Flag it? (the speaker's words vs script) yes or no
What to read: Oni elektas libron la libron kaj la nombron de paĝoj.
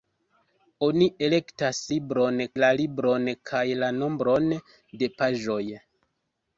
no